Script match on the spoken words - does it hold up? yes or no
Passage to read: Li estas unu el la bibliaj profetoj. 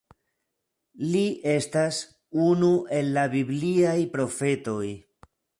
yes